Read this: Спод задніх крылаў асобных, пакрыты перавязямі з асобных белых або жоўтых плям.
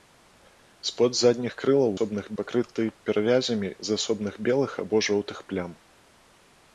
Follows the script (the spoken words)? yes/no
yes